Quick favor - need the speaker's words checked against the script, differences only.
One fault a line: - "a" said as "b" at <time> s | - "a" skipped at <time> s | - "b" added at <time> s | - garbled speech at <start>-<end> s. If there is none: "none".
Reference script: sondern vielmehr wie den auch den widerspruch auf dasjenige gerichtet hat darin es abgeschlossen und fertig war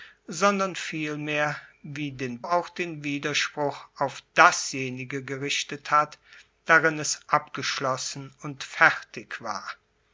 none